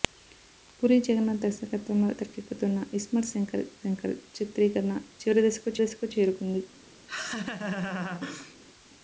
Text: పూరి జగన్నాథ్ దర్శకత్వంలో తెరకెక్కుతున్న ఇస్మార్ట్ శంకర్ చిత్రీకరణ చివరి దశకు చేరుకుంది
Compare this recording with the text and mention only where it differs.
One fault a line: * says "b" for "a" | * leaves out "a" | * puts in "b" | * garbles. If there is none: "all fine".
* puts in "శంకర్"
* puts in "దశకు"